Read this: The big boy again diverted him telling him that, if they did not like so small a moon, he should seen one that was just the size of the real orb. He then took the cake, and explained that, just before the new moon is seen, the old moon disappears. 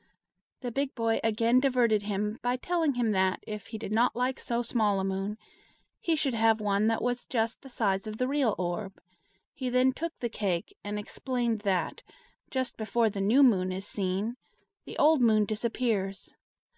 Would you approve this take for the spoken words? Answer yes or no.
no